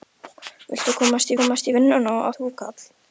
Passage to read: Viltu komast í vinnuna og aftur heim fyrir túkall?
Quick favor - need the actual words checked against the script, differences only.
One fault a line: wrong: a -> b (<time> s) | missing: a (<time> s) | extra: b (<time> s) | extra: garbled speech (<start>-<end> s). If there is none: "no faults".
extra: komast (1.4 s)
missing: aftur heim fyrir (2.3 s)